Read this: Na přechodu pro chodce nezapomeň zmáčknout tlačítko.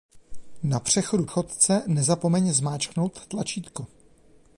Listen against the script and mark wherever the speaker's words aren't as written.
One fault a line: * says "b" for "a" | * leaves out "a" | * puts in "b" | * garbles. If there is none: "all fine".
* leaves out "pro"